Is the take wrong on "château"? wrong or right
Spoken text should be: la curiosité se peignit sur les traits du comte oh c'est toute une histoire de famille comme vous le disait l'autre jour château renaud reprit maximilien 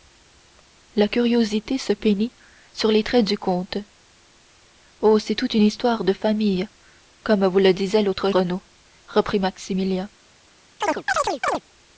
wrong